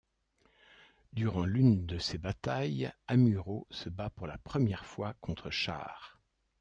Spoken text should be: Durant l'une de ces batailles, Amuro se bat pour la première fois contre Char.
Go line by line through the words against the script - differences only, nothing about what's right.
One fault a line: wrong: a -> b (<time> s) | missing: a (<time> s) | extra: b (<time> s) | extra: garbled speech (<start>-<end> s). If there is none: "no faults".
no faults